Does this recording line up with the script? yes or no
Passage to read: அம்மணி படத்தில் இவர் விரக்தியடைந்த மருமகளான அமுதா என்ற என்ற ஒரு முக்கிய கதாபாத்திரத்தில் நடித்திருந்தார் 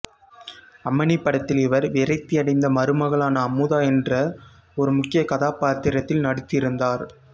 no